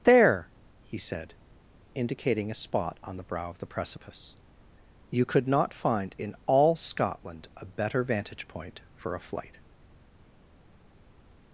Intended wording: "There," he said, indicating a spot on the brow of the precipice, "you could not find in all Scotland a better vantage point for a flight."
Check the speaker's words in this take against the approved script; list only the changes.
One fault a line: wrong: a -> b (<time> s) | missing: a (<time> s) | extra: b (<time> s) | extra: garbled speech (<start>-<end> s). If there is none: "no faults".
no faults